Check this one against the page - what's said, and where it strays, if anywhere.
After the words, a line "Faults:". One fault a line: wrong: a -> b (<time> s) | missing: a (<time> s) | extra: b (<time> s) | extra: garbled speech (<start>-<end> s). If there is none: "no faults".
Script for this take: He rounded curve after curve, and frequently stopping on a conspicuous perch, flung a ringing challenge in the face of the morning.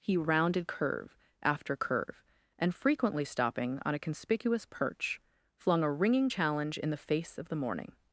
He rounded curve after curve, and frequently stopping on a conspicuous perch, flung a ringing challenge in the face of the morning.
Faults:
no faults